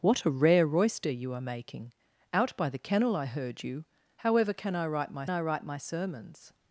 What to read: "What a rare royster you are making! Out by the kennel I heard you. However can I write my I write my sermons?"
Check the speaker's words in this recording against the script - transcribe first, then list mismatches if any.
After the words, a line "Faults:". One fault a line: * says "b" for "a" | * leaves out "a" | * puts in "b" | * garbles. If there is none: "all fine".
"What a rare royster you are making! Out by the kennel I heard you. However can I write my I write my sermons?"
Faults:
all fine